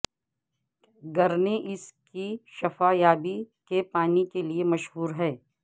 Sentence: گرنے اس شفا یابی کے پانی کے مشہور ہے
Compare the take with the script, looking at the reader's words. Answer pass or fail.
fail